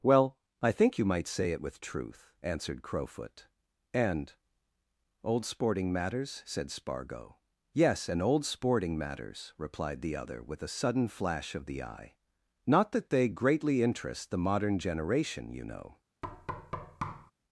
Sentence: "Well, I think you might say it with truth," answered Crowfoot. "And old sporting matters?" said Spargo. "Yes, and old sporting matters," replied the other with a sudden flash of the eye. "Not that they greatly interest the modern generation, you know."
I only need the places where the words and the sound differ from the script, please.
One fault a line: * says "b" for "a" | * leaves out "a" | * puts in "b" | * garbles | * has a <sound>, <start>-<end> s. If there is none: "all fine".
* has a thud, 16.2-17.3 s